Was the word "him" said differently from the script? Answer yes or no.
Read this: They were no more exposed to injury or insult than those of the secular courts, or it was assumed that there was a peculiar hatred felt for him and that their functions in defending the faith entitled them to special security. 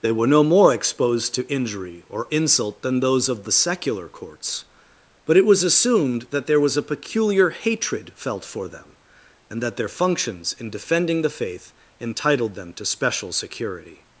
yes